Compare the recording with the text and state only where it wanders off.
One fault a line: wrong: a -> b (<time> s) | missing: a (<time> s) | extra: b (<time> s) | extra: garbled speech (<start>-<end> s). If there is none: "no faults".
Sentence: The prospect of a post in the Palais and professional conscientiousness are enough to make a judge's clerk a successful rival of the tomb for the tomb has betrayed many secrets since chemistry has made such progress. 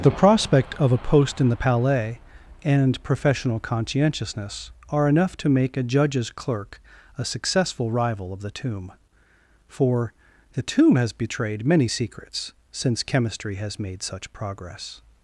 no faults